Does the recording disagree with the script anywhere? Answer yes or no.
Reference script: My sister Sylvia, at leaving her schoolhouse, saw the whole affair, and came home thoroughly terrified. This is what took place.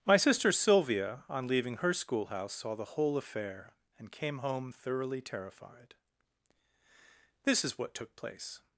yes